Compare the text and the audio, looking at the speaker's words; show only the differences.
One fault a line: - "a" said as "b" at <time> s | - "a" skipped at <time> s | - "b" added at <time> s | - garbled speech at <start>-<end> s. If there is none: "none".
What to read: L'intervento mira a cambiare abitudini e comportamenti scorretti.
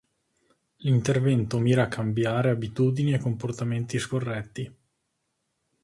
none